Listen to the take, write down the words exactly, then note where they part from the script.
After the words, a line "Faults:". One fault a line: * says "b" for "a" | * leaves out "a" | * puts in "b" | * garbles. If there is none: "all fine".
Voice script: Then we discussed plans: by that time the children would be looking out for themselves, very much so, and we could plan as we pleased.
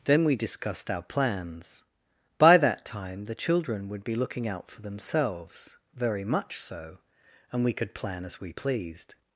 Then we discussed our plans: by that time the children would be looking out for themselves, very much so, and we could plan as we pleased.
Faults:
* puts in "our"